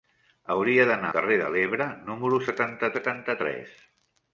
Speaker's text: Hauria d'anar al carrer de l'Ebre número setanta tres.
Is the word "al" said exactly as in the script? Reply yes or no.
no